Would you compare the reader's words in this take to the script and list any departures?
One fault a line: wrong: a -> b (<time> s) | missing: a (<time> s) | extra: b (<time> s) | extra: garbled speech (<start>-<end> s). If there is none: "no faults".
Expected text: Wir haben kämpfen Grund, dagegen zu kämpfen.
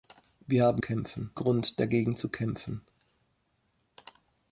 no faults